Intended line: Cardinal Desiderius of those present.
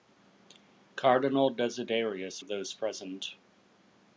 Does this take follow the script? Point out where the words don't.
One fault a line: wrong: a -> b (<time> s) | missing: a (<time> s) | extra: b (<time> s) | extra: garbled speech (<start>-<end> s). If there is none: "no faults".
no faults